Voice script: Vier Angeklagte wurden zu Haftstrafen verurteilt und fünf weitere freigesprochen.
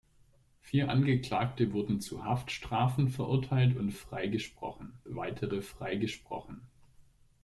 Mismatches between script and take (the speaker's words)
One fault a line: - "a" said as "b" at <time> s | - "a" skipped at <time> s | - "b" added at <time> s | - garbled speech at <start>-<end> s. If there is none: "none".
- "fünf" said as "freigesprochen" at 3.9 s